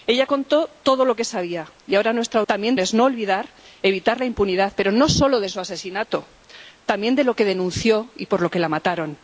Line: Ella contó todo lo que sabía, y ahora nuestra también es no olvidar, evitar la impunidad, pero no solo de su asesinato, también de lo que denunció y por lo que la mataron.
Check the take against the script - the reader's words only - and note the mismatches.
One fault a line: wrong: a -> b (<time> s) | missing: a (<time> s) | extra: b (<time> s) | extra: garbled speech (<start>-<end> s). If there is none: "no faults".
no faults